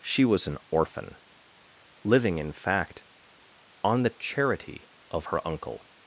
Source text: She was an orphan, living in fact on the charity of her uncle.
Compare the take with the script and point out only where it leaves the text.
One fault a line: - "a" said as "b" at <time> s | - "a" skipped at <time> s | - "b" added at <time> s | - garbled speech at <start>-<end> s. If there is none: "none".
none